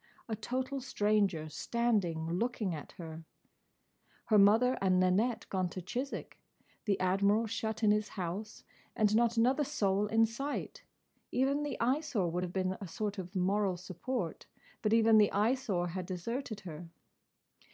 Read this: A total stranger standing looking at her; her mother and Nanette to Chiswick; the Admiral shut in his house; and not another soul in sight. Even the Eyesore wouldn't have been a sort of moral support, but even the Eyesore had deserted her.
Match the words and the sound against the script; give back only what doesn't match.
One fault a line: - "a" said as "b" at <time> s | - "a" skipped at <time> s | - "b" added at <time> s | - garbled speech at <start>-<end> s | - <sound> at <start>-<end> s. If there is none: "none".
- "gone" added at 5.5 s
- "wouldn't" said as "would" at 12.3 s